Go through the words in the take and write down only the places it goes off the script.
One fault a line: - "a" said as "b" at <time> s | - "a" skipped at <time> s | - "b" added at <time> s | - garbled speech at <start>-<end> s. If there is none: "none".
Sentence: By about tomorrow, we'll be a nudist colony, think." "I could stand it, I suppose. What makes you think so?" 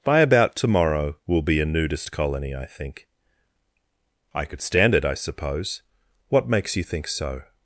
- "I" added at 2.5 s